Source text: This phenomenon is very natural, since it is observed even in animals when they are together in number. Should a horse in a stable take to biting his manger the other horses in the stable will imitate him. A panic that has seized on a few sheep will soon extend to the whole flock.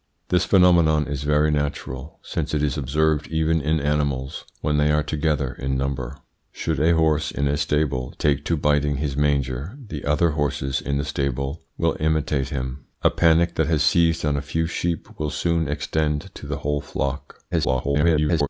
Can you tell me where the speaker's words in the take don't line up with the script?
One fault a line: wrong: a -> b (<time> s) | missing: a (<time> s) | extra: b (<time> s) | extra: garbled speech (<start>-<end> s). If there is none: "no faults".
extra: garbled speech (17.5-18.5 s)